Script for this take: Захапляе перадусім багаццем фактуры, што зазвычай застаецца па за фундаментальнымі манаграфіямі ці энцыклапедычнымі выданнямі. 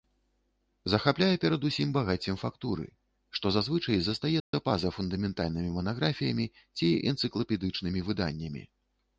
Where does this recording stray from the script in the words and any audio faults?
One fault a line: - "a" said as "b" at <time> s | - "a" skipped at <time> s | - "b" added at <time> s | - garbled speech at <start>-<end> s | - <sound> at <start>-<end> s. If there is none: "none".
- dropout at 4.4-4.5 s